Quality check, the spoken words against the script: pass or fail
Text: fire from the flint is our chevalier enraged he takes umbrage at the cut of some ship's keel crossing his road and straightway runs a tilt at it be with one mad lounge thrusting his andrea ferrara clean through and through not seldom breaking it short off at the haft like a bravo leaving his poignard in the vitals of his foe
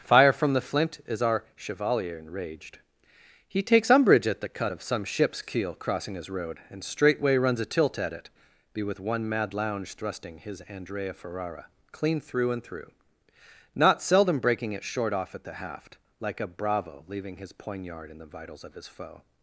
pass